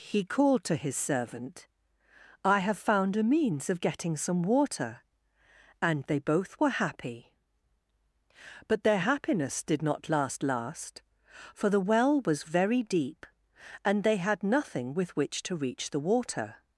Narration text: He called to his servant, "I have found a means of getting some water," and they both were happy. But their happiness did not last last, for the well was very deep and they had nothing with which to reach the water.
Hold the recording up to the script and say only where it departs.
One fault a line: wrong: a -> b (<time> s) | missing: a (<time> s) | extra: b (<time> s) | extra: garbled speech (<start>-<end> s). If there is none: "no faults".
no faults